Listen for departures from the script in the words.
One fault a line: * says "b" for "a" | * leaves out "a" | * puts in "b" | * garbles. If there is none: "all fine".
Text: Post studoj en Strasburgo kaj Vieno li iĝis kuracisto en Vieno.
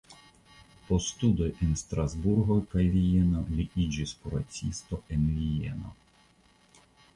all fine